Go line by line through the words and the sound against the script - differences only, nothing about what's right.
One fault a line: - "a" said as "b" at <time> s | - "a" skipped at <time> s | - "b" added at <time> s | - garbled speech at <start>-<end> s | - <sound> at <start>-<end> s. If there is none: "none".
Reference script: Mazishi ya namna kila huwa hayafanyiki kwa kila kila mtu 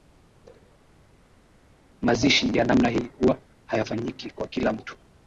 - "kila" said as "hii" at 2.9 s
- "kila" skipped at 4.7 s